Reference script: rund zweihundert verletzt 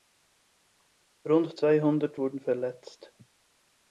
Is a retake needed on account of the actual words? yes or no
yes